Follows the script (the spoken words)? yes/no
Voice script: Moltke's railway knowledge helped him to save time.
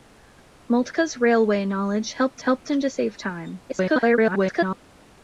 no